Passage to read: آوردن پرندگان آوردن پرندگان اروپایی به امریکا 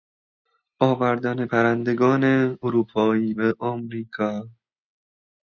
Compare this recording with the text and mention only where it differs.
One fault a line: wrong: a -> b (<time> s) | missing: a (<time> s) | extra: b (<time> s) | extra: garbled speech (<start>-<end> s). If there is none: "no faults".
missing: آوردن پرندگان (2.2 s)